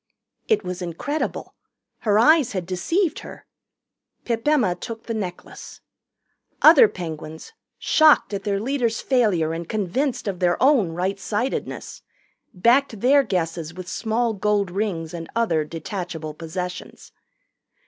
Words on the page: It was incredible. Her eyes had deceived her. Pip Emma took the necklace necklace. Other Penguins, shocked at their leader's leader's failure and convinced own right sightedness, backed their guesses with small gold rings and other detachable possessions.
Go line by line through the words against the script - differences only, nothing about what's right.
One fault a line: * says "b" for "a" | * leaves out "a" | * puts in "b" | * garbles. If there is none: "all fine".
* leaves out "necklace"
* leaves out "leader's"
* puts in "of their"